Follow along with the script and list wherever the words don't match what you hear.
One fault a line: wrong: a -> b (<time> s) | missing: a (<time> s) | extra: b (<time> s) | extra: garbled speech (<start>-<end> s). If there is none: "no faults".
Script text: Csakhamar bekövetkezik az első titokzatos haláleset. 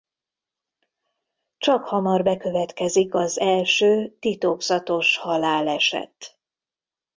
no faults